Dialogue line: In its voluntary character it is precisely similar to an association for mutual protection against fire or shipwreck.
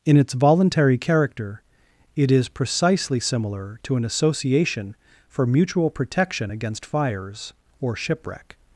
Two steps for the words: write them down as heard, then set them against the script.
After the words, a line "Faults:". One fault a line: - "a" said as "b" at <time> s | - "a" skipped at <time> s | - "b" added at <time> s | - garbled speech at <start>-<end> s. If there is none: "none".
In its voluntary character it is precisely similar to an association for mutual protection against fires or shipwreck.
Faults:
- "fire" said as "fires" at 6.8 s